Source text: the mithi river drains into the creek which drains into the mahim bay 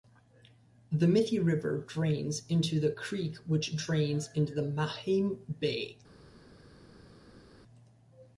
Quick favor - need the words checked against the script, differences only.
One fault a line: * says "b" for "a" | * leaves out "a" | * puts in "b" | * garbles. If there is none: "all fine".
all fine